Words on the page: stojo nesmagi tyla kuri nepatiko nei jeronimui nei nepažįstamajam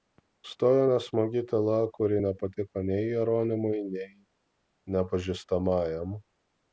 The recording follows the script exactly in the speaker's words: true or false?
true